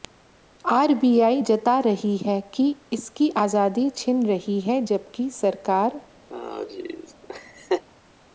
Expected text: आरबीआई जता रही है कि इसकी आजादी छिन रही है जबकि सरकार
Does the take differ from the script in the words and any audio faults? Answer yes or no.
yes